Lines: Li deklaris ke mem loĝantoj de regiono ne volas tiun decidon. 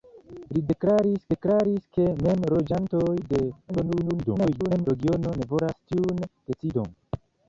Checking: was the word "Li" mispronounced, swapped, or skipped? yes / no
no